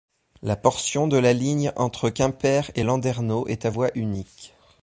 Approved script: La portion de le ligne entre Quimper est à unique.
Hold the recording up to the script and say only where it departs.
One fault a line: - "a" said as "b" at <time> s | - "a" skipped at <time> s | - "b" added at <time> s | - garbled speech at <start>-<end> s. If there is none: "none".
- "le" said as "la" at 1.2 s
- "et Landerneau" added at 2.7 s
- "voie" added at 3.7 s